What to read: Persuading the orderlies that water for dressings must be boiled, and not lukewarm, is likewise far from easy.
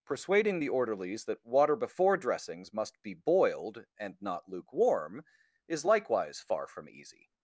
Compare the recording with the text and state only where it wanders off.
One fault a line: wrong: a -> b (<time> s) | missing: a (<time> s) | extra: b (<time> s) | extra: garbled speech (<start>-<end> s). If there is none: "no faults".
wrong: for -> before (1.8 s)